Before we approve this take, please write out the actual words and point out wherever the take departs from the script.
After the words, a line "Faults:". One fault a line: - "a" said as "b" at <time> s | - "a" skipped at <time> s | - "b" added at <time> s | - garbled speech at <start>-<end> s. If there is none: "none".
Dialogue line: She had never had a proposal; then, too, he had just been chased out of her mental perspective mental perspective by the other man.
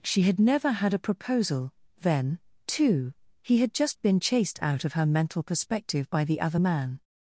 She had never had a proposal; then, too, he had just been chased out of her mental perspective by the other man.
Faults:
- "mental perspective" skipped at 6.1 s